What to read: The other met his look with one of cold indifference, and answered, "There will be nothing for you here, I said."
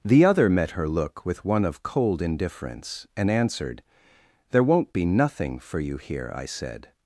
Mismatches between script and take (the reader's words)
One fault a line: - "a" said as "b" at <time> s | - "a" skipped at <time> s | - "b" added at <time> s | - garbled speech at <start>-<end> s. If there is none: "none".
- "his" said as "her" at 0.7 s
- "will" said as "won't" at 4.6 s